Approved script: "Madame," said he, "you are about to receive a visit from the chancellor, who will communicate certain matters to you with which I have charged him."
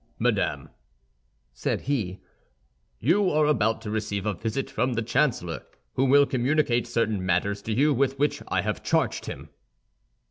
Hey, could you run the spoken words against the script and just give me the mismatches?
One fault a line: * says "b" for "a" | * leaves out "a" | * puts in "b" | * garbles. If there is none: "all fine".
all fine